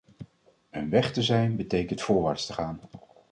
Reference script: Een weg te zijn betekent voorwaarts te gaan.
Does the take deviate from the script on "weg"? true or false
false